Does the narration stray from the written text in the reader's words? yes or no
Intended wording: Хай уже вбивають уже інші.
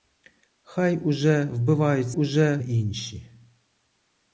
no